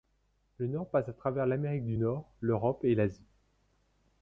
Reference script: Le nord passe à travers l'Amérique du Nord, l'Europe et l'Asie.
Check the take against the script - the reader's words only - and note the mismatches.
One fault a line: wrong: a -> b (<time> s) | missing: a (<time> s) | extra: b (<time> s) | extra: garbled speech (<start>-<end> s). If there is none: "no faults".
no faults